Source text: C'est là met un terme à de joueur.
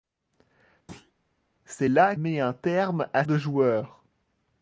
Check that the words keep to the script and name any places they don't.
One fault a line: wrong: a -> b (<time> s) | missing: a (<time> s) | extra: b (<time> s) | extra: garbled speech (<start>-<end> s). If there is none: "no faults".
no faults